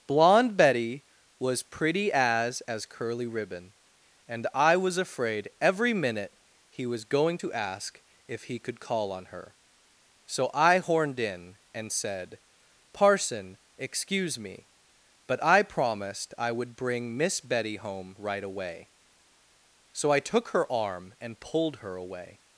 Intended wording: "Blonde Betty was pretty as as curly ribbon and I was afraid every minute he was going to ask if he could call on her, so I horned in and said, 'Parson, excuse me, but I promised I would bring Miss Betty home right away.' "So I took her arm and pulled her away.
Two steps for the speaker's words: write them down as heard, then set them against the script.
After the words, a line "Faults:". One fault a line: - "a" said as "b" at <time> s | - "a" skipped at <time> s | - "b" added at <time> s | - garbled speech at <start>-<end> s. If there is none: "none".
"Blonde Betty was pretty as as curly ribbon and I was afraid every minute he was going to ask if he could call on her, so I horned in and said, 'Parson, excuse me, but I promised I would bring Miss Betty home right away.' "So I took her arm and pulled her away.
Faults:
none